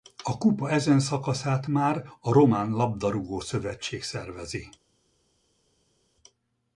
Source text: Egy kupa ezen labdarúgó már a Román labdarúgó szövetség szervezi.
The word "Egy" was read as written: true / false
false